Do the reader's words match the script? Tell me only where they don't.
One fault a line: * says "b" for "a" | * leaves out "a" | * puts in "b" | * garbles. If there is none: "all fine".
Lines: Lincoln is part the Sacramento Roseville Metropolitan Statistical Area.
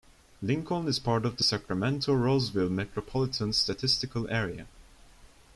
* puts in "of"